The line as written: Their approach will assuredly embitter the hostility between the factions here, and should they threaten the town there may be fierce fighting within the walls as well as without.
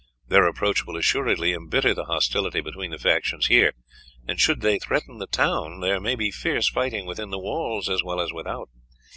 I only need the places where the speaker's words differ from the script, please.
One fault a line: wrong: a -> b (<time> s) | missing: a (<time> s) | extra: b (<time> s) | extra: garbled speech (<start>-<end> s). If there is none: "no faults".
no faults